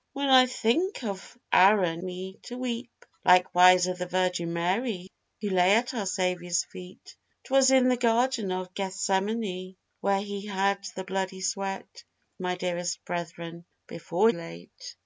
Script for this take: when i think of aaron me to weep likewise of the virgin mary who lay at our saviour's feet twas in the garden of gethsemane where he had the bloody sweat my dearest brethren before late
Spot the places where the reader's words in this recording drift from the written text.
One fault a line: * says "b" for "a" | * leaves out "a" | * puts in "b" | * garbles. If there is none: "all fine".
all fine